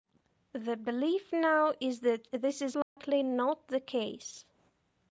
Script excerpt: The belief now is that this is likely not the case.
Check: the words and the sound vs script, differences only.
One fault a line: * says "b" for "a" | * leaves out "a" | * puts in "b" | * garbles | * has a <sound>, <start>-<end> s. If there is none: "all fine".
* has a dropout, 2.8-3.0 s